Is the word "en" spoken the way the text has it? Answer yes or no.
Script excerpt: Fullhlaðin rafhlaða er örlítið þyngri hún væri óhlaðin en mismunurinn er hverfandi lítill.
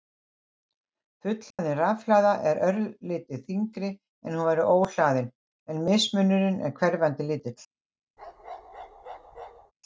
yes